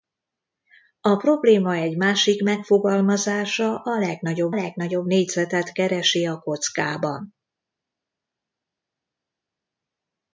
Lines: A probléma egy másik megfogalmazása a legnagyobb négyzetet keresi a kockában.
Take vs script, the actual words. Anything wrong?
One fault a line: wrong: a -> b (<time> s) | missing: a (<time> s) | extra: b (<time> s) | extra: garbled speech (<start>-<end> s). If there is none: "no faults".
extra: legnagyobb (4.5 s)